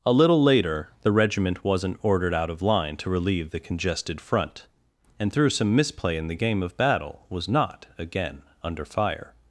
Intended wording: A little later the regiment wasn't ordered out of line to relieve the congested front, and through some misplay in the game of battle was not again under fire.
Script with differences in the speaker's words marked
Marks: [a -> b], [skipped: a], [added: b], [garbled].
A little later the regiment wasn't ordered out of line to relieve the congested front, and through some misplay in the game of battle was not again under fire.